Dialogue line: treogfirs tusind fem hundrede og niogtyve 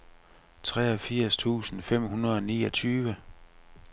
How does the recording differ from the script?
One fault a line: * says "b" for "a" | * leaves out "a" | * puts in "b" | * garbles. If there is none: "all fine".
all fine